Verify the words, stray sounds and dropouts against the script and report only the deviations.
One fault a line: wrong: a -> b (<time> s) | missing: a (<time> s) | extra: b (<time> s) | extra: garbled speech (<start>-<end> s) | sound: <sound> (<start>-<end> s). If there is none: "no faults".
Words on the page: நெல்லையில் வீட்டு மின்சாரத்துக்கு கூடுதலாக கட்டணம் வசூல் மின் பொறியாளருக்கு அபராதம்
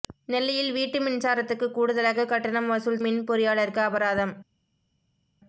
no faults